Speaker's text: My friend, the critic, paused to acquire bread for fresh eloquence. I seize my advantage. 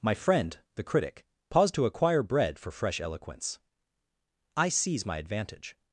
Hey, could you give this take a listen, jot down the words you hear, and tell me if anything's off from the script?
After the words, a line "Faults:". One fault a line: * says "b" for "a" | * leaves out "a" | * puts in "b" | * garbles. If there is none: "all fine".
My friend, the critic, paused to acquire bread for fresh eloquence. I seize my advantage.
Faults:
all fine